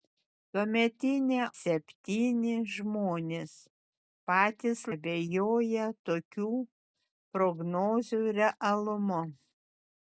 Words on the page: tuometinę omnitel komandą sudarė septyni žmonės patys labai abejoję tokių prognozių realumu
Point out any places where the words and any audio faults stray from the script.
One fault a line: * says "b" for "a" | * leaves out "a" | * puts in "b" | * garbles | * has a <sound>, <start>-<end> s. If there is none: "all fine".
* leaves out "omnitel komandą sudarė"
* leaves out "labai"